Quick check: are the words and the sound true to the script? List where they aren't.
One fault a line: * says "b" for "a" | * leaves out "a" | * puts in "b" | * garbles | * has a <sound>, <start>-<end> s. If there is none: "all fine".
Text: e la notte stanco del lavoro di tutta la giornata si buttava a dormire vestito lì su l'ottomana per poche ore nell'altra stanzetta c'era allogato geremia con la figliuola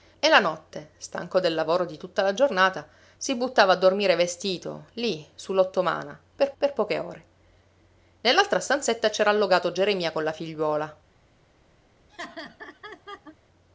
* puts in "per"
* has a laugh, 12.1-13.4 s